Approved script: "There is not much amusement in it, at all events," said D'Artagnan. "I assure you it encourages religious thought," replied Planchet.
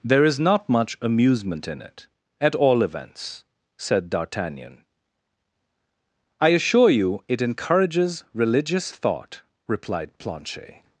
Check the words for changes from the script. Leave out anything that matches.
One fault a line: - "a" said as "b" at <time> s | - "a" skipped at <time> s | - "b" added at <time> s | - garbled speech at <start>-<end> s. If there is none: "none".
none